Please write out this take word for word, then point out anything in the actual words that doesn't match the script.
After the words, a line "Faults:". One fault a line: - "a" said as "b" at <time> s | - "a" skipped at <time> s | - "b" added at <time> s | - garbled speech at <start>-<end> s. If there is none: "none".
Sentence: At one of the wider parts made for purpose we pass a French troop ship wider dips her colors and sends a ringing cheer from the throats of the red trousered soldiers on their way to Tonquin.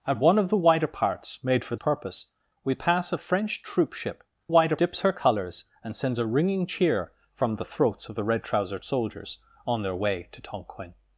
At one of the wider parts made for purpose we pass a French troop ship wider dips her colors and sends a ringing cheer from the throats of the red trousered soldiers on their way to Tonquin.
Faults:
none